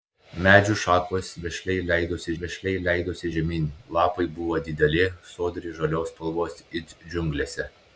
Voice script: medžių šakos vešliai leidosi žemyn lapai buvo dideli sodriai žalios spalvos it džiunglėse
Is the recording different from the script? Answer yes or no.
yes